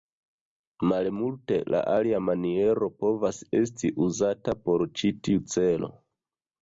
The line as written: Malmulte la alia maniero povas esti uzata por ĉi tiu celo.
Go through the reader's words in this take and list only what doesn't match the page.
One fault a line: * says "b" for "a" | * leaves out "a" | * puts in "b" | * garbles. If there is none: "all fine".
all fine